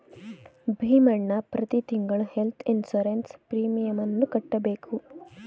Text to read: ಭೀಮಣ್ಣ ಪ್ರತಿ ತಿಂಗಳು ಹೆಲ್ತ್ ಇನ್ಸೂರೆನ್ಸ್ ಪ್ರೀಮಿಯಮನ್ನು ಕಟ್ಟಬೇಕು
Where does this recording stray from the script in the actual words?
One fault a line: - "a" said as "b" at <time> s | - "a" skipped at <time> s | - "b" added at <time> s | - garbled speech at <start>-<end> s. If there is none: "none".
none